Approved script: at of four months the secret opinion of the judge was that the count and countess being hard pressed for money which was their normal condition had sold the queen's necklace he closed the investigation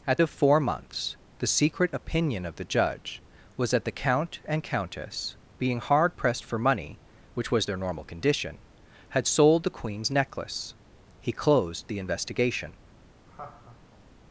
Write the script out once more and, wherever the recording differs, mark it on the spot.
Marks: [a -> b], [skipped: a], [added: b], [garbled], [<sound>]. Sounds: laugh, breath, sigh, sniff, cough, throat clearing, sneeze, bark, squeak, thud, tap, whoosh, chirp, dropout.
at of four months the secret opinion of the judge was that the count and countess being hard pressed for money which was their normal condition had sold the queen's necklace he closed the investigation [laugh]